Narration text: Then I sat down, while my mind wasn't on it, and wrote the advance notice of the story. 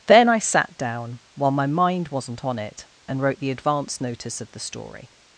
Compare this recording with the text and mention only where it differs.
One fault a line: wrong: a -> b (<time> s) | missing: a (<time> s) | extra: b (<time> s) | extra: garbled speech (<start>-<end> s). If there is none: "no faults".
no faults